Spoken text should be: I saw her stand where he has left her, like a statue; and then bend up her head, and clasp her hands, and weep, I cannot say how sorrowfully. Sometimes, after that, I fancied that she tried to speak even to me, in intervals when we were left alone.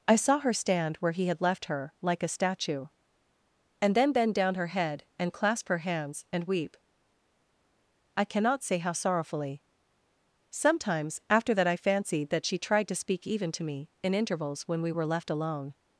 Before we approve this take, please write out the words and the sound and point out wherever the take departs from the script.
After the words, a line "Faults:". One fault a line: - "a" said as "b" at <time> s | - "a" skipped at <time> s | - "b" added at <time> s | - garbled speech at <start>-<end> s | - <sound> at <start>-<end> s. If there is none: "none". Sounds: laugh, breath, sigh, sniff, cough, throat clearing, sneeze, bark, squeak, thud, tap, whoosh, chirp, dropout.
I saw her stand where he had left her, like a statue; and then bend down her head, and clasp her hands, and weep, I cannot say how sorrowfully. Sometimes, after that, I fancied that she tried to speak even to me, in intervals when we were left alone.
Faults:
- "has" said as "had" at 1.3 s
- "up" said as "down" at 4.3 s